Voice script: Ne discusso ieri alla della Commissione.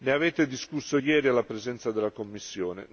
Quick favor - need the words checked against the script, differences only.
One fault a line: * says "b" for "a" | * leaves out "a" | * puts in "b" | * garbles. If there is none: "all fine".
* puts in "avete"
* puts in "presenza"